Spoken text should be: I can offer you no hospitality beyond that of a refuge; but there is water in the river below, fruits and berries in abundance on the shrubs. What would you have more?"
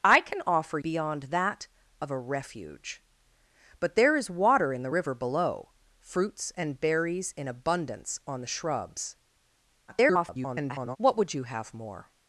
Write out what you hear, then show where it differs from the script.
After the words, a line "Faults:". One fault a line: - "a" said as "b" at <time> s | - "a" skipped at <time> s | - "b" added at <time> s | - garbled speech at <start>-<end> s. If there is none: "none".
I can offer beyond that of a refuge; but there is water in the river below, fruits and berries in abundance on the shrubs. [garbled] What would you have more?"
Faults:
- "you no hospitality" skipped at 0.8 s
- garbled speech at 9.9-11.0 s